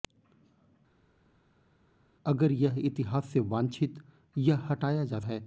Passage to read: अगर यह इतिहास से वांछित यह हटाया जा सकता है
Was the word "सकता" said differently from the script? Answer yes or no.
yes